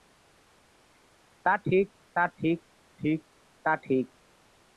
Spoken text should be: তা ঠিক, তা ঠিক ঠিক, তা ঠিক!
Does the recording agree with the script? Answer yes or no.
yes